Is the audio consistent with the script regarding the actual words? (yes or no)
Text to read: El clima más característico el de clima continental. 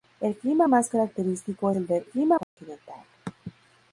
yes